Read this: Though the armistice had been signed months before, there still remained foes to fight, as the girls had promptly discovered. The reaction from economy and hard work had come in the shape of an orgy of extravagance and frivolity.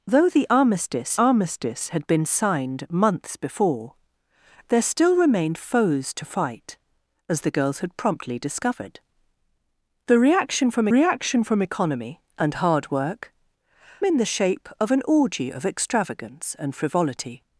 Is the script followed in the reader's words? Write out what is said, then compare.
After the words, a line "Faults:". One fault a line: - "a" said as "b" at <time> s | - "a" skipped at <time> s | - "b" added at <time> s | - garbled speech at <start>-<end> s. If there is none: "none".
Though the armistice armistice had been signed months before, there still remained foes to fight, as the girls had promptly discovered. The reaction from reaction from economy and hard work in the shape of an orgy of extravagance and frivolity.
Faults:
- "armistice" added at 1.2 s
- "reaction from" added at 10.9 s
- "had come" skipped at 13.3 s